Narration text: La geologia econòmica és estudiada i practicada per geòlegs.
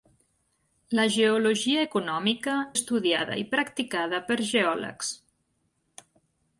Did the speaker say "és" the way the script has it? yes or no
no